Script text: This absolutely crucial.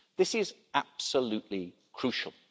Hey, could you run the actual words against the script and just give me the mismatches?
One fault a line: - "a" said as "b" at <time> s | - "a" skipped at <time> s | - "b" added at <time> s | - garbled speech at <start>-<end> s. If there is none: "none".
- "is" added at 0.3 s